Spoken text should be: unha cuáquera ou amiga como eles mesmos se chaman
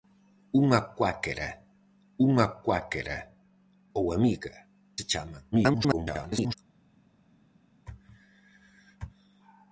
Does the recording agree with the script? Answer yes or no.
no